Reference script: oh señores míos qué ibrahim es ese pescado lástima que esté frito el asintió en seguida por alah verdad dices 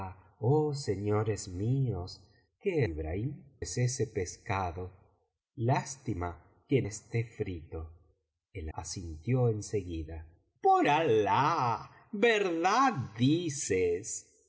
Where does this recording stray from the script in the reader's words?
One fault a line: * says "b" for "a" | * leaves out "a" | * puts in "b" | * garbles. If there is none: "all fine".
all fine